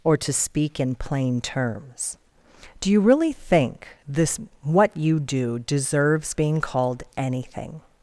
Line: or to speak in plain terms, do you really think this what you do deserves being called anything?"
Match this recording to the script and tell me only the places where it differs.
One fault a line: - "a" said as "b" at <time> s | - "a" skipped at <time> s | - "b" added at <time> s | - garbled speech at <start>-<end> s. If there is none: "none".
none